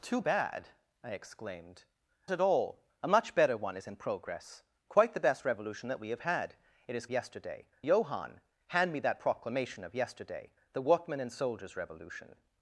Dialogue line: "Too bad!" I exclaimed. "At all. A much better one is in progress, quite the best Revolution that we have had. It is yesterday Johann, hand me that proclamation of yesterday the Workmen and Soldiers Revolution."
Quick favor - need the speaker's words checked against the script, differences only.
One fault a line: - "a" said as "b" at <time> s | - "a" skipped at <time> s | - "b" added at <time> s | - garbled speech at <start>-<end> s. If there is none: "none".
none